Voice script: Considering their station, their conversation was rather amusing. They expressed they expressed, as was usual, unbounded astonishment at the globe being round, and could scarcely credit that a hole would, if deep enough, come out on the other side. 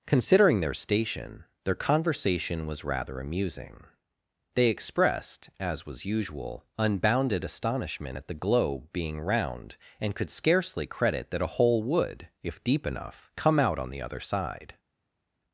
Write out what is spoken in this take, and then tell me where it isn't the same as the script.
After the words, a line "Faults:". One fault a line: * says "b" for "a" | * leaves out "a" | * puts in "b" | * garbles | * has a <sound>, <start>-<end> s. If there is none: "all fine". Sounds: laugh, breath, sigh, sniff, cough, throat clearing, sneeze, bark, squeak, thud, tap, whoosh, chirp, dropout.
Considering their station, their conversation was rather amusing. They expressed, as was usual, unbounded astonishment at the globe being round, and could scarcely credit that a hole would, if deep enough, come out on the other side.
Faults:
* leaves out "they expressed"